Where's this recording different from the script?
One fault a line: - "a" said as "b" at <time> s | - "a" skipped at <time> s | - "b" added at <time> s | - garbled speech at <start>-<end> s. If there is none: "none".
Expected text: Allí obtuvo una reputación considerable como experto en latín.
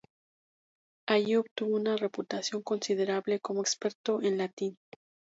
none